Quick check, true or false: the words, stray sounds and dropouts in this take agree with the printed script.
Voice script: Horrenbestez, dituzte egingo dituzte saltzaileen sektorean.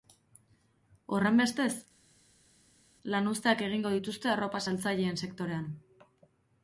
false